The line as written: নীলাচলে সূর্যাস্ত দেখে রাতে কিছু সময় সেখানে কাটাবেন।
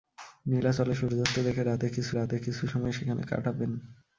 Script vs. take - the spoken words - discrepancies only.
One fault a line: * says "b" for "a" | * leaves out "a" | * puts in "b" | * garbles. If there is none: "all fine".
* puts in "রাতে কিছু"